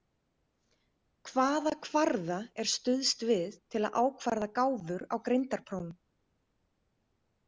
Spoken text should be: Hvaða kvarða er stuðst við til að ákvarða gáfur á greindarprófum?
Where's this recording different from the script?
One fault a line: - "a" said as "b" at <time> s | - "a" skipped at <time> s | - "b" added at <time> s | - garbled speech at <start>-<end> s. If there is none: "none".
none